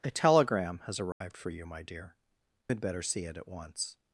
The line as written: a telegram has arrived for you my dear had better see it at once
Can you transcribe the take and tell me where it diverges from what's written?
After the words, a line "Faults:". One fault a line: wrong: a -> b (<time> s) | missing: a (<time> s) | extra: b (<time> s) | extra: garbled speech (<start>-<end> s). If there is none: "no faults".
a telegram has arrived for you my dear had better see it at once
Faults:
no faults